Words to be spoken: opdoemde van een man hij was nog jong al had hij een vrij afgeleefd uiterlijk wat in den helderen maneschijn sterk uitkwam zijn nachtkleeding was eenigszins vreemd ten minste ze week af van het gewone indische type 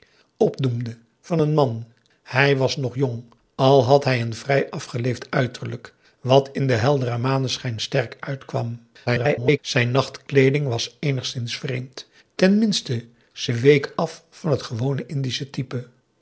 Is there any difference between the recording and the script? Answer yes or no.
yes